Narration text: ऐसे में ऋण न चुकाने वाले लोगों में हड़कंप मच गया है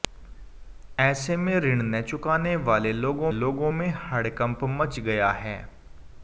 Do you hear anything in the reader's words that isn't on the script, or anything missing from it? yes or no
yes